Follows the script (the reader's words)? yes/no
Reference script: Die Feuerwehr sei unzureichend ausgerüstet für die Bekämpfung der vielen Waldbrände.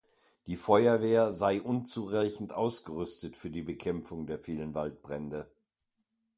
yes